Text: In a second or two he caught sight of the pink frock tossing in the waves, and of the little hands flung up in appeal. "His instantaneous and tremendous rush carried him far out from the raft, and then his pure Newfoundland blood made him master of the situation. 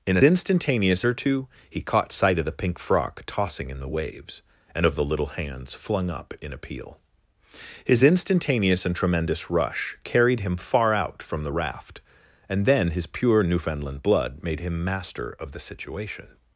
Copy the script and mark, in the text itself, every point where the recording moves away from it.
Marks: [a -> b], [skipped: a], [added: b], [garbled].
In a [second -> instantaneous] or two he caught sight of the pink frock tossing in the waves, and of the little hands flung up in appeal. "His instantaneous and tremendous rush carried him far out from the raft, and then his pure Newfoundland blood made him master of the situation.